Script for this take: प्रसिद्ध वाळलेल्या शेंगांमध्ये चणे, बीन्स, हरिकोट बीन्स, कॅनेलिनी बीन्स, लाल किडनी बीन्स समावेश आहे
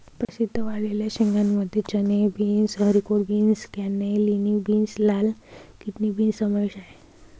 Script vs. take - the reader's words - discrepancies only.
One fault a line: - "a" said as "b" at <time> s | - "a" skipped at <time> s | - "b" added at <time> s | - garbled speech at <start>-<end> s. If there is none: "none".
none